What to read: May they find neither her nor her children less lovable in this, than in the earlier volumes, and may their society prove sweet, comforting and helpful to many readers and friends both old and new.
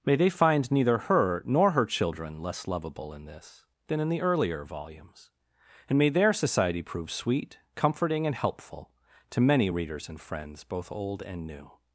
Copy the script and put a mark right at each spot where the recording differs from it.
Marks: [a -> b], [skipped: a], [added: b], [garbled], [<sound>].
May they find neither her nor her children less lovable in this, than in the earlier volumes, and may their society prove sweet, comforting and helpful to many readers and friends both old and new.